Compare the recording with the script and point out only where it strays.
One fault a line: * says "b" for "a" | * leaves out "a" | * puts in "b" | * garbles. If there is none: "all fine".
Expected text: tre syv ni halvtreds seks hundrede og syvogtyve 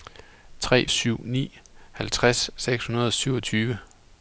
all fine